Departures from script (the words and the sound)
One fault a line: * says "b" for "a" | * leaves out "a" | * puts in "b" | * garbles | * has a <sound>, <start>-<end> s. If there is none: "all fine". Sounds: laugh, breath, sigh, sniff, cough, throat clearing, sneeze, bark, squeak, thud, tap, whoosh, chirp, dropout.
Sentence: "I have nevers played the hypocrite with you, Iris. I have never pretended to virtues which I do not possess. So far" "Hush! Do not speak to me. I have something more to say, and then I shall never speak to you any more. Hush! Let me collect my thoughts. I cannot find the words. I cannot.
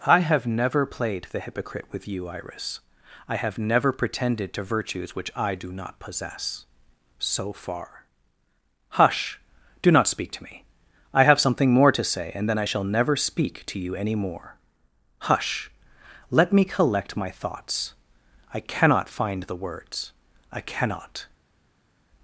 * says "never" for "nevers"